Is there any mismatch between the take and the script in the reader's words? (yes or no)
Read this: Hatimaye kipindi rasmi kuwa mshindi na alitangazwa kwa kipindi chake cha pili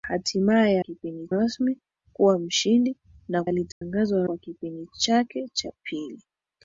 no